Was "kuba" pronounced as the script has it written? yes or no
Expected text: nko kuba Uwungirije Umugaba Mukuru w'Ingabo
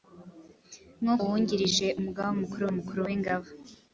no